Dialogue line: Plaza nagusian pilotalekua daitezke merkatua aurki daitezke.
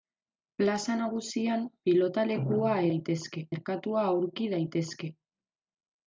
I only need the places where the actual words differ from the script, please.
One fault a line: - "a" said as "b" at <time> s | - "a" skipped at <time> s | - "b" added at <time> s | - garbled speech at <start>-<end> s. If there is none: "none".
none